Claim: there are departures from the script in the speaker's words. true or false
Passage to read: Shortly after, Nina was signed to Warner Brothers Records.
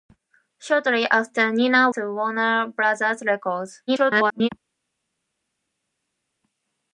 true